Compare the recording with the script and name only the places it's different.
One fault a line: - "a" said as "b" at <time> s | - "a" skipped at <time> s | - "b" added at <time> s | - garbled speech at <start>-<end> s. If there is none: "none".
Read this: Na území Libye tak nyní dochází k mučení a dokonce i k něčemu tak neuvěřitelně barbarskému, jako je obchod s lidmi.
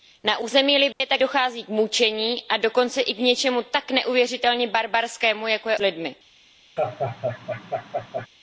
- "nyní" skipped at 1.2 s
- "obchod" skipped at 5.8 s